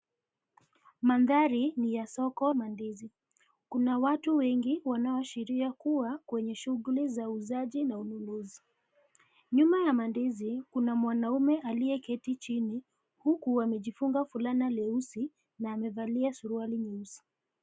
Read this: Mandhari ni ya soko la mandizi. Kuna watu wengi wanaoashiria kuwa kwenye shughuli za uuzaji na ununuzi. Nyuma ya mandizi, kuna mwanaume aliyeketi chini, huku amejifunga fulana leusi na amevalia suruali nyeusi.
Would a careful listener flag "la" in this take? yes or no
yes